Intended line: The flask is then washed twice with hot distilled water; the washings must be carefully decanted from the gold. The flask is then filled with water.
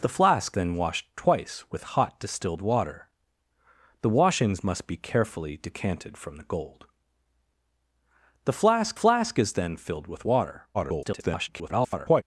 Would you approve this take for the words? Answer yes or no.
no